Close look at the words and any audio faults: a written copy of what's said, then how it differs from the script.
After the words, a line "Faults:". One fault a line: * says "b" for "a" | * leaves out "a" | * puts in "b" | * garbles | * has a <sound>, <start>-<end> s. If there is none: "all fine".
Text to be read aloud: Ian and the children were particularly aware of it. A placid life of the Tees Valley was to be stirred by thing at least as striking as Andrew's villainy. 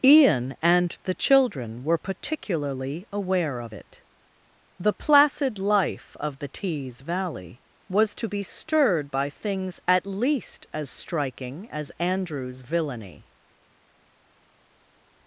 Ian and the children were particularly aware of it. The placid life of the Tees Valley was to be stirred by things at least as striking as Andrew's villainy.
Faults:
* says "The" for "A"
* says "things" for "thing"